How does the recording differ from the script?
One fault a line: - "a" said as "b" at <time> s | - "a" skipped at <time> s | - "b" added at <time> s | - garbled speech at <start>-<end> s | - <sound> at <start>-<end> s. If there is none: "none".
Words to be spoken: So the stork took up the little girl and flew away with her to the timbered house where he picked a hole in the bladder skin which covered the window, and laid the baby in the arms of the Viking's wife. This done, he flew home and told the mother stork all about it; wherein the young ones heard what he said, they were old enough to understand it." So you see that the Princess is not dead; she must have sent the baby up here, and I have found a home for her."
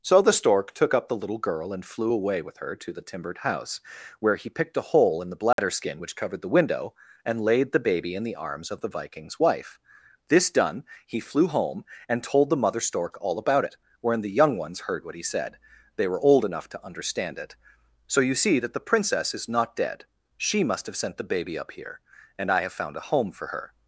- dropout at 5.5-5.6 s